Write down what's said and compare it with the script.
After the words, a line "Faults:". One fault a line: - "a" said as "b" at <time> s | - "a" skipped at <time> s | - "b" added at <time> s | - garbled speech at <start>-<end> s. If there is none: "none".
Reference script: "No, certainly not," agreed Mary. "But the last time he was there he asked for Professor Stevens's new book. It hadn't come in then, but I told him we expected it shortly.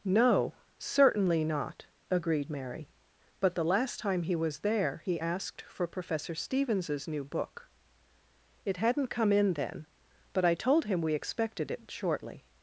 "No, certainly not," agreed Mary. "But the last time he was there he asked for Professor Stevens's new book. It hadn't come in then, but I told him we expected it shortly.
Faults:
none